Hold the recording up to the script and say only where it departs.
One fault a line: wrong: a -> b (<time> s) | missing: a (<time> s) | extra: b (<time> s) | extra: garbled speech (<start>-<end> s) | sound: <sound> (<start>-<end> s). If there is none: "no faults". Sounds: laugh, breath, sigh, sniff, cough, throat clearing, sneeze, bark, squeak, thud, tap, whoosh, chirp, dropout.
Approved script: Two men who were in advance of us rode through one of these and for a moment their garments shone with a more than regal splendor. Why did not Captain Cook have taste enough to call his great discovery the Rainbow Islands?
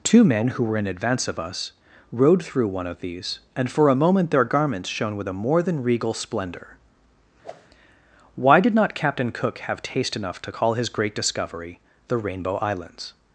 sound: whoosh (7.4-7.7 s)